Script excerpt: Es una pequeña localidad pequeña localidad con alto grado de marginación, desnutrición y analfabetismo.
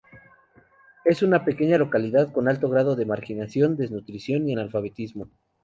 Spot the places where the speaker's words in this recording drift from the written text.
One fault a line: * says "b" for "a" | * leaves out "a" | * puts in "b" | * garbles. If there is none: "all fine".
* leaves out "pequeña localidad"